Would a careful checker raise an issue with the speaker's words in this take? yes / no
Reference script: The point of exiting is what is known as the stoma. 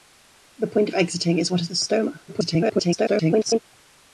yes